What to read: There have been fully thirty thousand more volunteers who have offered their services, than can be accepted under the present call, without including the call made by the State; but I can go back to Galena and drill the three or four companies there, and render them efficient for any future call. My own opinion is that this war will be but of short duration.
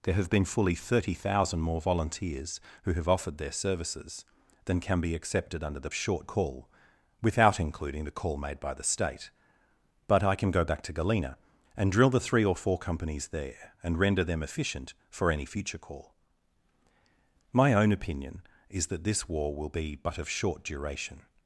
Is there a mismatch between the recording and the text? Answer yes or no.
yes